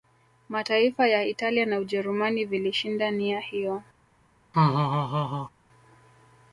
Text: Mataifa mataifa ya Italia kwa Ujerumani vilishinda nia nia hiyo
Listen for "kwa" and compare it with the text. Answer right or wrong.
wrong